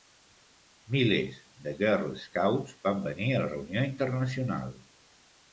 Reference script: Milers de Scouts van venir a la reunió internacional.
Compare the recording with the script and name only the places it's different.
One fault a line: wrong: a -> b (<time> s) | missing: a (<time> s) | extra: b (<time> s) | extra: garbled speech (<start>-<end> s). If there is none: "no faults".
extra: Girl (1.8 s)